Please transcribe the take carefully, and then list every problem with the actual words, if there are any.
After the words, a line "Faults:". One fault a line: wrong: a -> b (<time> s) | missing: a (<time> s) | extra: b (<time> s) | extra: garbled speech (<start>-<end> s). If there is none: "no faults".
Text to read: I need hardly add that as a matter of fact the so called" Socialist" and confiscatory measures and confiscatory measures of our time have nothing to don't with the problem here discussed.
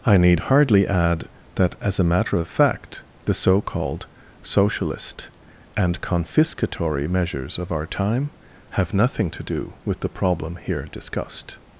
I need hardly add that as a matter of fact the so called" Socialist" and confiscatory measures of our time have nothing to do with the problem here discussed.
Faults:
missing: and confiscatory measures (7.6 s)
wrong: don't -> do (9.4 s)